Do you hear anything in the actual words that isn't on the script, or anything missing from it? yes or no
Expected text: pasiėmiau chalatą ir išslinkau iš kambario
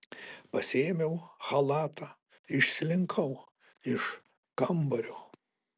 yes